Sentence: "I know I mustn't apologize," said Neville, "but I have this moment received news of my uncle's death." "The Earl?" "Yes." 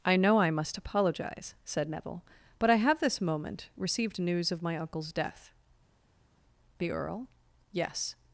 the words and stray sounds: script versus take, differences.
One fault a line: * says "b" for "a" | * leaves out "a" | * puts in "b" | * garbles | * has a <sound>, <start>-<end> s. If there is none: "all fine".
* says "must" for "mustn't"